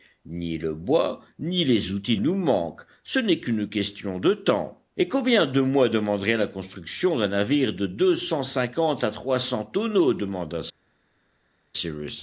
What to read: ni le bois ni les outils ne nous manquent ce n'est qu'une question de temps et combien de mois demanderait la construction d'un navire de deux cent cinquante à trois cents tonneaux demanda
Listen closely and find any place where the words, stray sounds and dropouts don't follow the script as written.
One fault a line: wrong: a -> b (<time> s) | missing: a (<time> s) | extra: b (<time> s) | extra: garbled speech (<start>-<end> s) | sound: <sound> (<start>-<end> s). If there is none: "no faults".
missing: ne (2.2 s)